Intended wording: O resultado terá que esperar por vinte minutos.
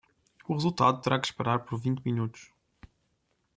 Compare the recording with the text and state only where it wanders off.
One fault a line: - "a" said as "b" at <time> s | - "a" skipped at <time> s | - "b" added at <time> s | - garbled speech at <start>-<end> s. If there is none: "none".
none